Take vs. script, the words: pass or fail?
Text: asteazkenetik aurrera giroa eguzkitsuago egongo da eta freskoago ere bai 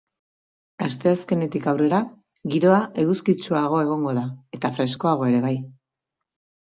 pass